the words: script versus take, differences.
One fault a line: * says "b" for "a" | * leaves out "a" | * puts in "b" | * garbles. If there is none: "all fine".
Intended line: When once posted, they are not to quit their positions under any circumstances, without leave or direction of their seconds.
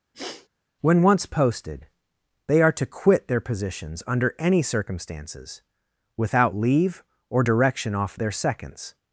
* leaves out "not"
* says "off" for "of"